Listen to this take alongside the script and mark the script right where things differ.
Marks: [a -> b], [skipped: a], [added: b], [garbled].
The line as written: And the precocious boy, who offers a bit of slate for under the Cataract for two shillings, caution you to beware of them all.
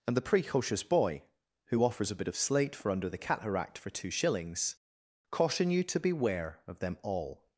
And the precocious boy, who offers a bit of slate for under the Cataract for two shillings, caution you to beware of them all.